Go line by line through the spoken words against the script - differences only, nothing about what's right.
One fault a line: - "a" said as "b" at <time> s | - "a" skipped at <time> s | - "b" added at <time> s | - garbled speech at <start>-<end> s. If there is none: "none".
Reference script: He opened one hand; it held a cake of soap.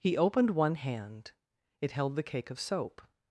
- "a" said as "the" at 2.1 s